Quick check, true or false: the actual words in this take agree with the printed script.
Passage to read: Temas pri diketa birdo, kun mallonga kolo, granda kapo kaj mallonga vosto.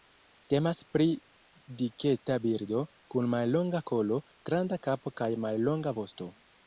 true